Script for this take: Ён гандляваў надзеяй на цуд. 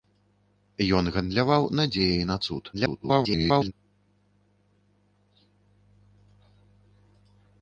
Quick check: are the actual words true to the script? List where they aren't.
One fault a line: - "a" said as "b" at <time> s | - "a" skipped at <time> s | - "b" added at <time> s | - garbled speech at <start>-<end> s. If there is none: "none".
- garbled speech at 2.7-3.7 s